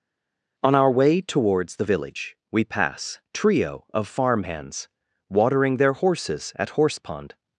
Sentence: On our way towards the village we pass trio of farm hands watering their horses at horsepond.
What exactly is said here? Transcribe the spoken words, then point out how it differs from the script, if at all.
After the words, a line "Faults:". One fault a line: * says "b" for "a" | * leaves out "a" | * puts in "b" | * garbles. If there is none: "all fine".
On our way towards the village we pass trio of farm hands watering their horses at horsepond.
Faults:
all fine